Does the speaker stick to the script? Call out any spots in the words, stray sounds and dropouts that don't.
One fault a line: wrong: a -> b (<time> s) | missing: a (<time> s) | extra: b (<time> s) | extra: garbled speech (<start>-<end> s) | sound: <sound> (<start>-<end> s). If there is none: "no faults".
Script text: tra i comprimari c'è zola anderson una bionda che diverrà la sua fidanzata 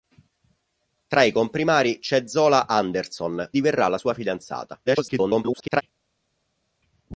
missing: una bionda che (3.5 s)
extra: garbled speech (4.9-5.8 s)